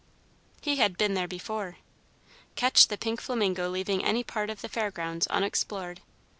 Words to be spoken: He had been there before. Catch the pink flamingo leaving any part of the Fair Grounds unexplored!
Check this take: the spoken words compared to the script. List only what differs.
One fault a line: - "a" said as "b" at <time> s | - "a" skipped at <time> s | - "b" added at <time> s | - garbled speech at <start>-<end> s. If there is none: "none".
none